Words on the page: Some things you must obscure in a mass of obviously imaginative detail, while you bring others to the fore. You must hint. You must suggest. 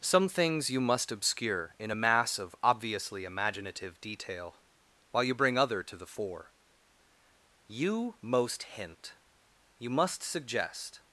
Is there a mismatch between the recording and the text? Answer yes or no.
yes